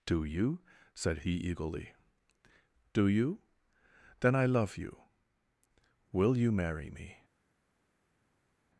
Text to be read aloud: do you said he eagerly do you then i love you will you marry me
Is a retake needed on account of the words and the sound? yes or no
no